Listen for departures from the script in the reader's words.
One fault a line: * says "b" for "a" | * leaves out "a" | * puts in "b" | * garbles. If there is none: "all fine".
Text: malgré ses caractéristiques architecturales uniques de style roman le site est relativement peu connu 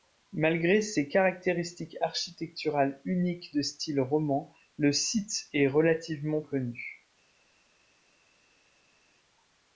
* leaves out "peu"